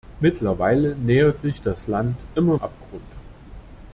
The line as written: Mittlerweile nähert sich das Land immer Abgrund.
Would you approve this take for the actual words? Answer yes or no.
yes